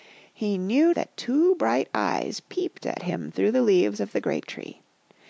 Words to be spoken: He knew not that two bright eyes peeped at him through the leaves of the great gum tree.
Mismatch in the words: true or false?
true